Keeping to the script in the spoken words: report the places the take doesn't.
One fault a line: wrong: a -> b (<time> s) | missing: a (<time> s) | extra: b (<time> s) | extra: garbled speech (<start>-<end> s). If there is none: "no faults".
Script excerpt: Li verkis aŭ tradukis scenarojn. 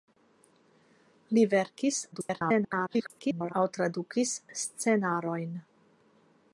extra: garbled speech (2.1-3.5 s)